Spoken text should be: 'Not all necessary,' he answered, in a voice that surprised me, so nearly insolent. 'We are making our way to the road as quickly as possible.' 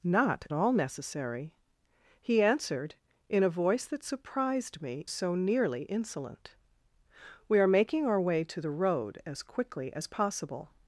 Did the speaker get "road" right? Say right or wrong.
right